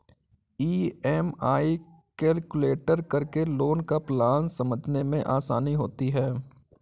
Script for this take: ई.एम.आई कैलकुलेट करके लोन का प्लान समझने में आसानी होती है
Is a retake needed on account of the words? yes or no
no